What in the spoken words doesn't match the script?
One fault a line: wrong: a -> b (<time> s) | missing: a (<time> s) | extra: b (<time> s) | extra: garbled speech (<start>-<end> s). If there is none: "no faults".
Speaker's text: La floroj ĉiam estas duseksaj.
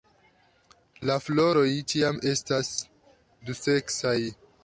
no faults